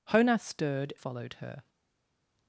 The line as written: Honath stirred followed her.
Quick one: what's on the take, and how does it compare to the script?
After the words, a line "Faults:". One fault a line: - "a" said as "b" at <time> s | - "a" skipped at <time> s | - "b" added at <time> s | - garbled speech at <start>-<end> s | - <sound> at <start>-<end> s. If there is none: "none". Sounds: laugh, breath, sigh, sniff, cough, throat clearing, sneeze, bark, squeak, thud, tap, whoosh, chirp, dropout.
Honath stirred followed her.
Faults:
none